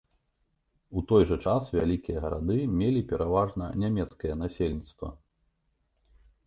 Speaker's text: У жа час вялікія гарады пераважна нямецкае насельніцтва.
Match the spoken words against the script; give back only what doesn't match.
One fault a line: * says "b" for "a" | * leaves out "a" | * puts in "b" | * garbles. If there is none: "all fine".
* puts in "той"
* puts in "мелі"